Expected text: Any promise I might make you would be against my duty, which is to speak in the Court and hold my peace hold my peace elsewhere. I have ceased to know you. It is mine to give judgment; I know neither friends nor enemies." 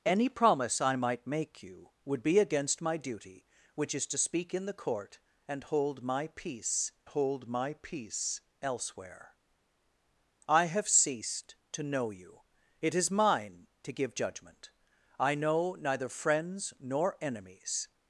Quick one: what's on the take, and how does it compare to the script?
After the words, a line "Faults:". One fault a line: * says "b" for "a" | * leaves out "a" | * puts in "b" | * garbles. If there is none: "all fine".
Any promise I might make you would be against my duty, which is to speak in the Court and hold my peace hold my peace elsewhere. I have ceased to know you. It is mine to give judgment; I know neither friends nor enemies."
Faults:
all fine